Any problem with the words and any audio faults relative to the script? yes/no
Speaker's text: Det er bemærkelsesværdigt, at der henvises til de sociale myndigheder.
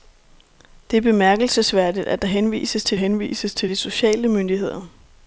yes